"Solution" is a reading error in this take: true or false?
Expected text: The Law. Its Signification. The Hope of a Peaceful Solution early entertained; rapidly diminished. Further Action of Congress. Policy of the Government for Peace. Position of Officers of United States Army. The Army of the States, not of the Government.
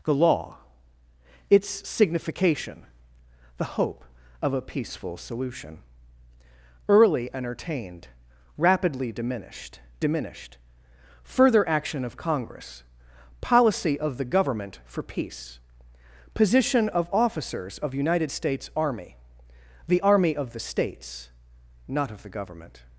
false